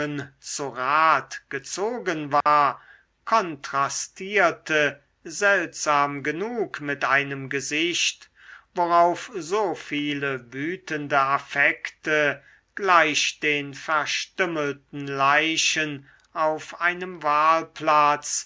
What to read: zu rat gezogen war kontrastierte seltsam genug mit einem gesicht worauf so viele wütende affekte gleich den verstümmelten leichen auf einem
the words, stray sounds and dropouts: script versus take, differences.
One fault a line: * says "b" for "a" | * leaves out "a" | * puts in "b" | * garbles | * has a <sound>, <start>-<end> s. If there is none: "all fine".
* has a dropout, 2.4-2.5 s